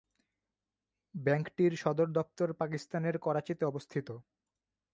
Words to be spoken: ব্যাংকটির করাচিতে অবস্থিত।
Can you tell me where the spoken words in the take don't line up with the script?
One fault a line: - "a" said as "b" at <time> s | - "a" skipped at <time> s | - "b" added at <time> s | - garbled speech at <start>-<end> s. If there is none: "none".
- "সদর দপ্তর পাকিস্তানের" added at 1.8 s